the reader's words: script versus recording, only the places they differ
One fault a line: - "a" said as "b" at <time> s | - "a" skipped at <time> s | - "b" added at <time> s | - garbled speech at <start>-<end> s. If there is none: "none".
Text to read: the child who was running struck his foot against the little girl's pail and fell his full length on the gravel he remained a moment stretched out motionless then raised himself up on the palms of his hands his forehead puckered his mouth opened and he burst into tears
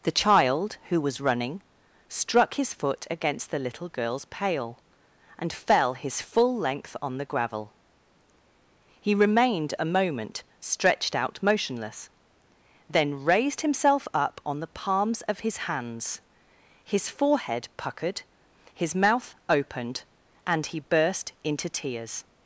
none